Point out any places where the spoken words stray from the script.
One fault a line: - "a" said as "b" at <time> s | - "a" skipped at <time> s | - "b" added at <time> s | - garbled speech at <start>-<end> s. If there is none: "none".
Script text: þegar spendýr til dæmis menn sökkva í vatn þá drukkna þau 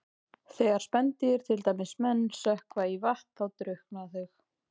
none